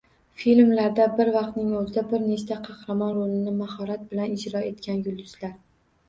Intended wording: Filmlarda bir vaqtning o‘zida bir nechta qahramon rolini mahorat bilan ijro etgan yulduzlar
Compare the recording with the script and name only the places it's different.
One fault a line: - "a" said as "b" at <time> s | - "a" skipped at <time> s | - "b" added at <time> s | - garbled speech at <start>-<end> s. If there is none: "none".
none